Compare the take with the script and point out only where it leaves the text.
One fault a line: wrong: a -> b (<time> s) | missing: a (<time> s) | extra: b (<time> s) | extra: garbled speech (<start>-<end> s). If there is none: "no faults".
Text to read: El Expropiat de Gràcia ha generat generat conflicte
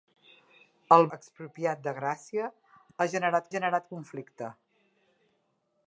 no faults